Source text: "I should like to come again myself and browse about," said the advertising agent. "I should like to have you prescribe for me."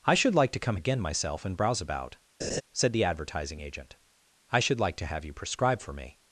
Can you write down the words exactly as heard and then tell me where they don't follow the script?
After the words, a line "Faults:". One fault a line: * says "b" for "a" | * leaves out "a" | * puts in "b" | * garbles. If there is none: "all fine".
"I should like to come again myself and browse about," said the advertising agent. "I should like to have you prescribe for me."
Faults:
all fine